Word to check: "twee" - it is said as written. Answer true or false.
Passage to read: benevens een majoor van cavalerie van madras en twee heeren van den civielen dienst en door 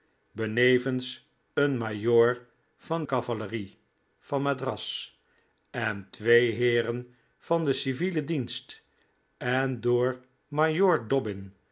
true